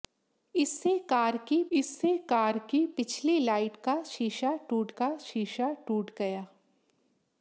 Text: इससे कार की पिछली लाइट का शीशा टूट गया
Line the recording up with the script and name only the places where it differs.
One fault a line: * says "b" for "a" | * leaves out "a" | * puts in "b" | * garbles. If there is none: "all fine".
* puts in "इससे कार की"
* puts in "का शीशा टूट"